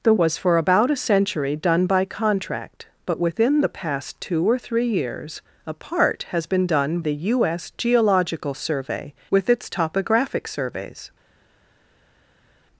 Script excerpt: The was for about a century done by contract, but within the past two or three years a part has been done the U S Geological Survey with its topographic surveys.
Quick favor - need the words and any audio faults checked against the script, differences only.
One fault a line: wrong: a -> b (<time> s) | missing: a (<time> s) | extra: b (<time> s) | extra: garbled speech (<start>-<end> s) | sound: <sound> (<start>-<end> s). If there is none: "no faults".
no faults